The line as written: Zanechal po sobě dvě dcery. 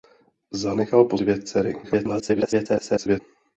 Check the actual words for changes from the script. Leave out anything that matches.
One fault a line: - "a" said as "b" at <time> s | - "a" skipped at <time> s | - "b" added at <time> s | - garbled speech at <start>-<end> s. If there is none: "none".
- "sobě" skipped at 1.2 s
- garbled speech at 1.8-3.2 s